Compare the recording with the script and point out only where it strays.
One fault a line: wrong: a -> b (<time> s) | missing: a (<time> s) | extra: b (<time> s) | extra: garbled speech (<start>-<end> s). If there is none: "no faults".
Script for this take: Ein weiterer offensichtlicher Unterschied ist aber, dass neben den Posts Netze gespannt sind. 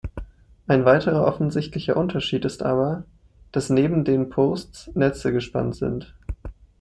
no faults